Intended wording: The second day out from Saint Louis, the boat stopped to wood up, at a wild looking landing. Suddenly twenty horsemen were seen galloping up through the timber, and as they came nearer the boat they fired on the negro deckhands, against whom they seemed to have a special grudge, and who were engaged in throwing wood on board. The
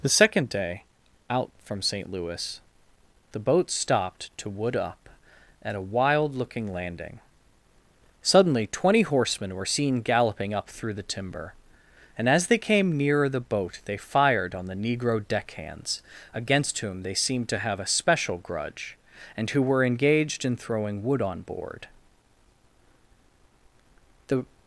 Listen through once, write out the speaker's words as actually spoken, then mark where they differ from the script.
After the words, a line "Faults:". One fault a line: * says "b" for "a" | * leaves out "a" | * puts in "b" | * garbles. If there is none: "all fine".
The second day out from Saint Louis, the boat stopped to wood up, at a wild looking landing. Suddenly twenty horsemen were seen galloping up through the timber, and as they came nearer the boat they fired on the negro deckhands, against whom they seemed to have a special grudge, and who were engaged in throwing wood on board. The
Faults:
all fine